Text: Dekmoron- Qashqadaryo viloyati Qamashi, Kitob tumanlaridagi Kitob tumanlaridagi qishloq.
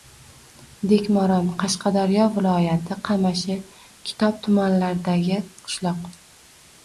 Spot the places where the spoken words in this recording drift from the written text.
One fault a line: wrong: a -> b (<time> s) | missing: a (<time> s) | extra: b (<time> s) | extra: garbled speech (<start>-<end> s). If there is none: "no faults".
missing: Kitob tumanlaridagi (5.4 s)